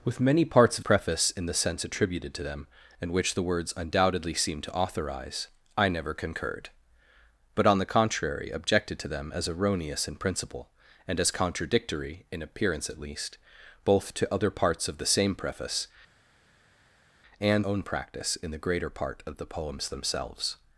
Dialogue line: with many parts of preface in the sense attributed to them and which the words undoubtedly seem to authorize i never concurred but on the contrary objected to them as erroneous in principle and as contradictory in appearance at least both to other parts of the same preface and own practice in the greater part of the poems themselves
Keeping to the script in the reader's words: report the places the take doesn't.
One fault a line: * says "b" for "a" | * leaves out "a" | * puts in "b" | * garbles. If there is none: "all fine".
all fine